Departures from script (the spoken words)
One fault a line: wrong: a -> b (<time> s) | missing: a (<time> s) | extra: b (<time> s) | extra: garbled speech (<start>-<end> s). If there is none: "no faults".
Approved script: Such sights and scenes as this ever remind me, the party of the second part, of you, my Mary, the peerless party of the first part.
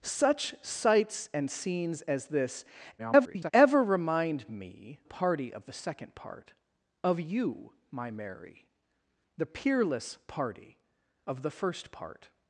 extra: garbled speech (3.0-3.5 s)
missing: the (5.0 s)